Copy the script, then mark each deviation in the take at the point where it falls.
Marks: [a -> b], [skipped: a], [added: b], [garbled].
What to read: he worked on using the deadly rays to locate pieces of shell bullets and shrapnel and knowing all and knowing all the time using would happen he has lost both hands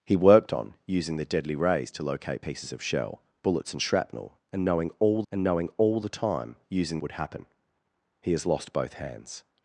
he worked on using the deadly rays to locate pieces of shell bullets and shrapnel and knowing all and knowing all the time using would happen he has lost both hands